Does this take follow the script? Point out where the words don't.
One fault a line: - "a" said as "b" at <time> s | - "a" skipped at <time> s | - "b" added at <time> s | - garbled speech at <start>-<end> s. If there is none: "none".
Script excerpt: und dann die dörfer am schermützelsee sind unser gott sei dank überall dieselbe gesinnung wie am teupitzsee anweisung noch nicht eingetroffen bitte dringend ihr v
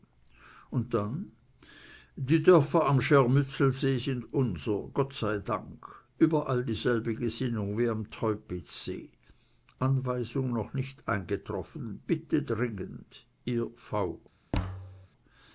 none